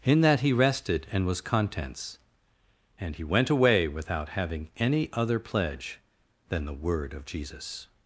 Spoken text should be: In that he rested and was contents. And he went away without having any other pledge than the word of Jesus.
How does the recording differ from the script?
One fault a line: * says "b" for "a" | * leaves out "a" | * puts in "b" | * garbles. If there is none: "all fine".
all fine